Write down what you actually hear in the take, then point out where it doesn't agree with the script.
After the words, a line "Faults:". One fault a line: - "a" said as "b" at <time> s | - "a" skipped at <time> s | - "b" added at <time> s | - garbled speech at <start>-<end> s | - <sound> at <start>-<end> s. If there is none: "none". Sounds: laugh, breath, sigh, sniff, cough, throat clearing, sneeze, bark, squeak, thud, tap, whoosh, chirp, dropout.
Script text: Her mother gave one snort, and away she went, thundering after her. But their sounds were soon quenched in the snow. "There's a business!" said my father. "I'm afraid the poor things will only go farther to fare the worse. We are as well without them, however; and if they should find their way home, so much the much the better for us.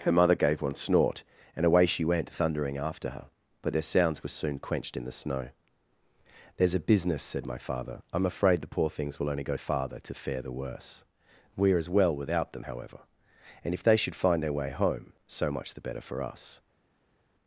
Her mother gave one snort, and away she went, thundering after her. But their sounds were soon quenched in the snow. "There's a business!" said my father. "I'm afraid the poor things will only go farther to fare the worse. We are as well without them, however; and if they should find their way home, so much the better for us.
Faults:
- "much the" skipped at 15.9 s